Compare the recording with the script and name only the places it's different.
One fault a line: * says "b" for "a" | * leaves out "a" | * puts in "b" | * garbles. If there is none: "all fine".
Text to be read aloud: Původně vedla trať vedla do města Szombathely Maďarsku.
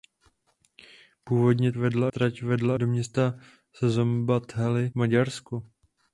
all fine